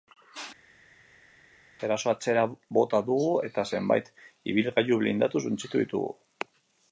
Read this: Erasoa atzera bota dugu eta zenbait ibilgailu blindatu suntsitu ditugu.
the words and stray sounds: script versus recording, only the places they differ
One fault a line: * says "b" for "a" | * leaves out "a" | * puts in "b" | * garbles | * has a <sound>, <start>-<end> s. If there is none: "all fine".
all fine